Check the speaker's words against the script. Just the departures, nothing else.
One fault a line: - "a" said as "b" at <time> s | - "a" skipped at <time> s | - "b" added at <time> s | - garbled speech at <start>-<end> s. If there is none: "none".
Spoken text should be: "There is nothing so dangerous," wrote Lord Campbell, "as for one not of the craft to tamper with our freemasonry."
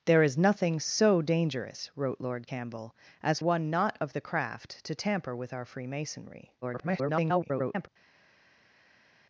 - "for" skipped at 3.4 s
- garbled speech at 6.6-7.9 s